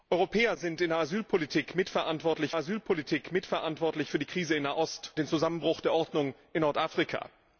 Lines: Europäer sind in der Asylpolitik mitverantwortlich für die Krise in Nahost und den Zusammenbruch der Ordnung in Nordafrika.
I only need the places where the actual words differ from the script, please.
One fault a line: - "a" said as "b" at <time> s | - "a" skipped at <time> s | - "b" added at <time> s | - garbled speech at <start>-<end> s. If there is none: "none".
- "Asylpolitik mitverantwortlich" added at 2.6 s
- "und" skipped at 5.1 s